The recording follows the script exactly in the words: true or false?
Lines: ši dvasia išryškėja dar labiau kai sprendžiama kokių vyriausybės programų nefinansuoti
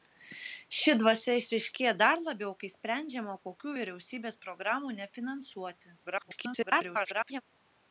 false